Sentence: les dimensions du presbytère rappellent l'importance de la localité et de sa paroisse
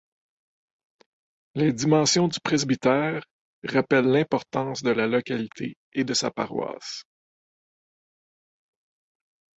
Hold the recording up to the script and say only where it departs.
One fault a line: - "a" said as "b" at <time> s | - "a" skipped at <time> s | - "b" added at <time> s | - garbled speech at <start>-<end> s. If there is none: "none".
none